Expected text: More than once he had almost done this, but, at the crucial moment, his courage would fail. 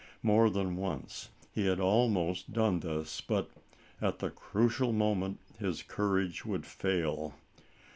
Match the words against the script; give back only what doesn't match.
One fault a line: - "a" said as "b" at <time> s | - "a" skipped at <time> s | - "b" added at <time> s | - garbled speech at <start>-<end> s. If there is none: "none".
none